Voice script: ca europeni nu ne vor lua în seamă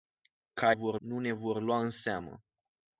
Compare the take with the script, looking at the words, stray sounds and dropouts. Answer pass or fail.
fail